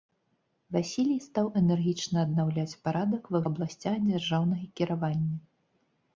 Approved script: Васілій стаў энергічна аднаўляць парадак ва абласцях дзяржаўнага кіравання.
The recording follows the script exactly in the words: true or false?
true